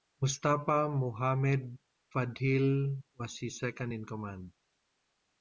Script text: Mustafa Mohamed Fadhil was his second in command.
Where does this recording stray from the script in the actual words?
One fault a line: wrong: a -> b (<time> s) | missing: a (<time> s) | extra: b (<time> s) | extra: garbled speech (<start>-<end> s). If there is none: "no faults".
no faults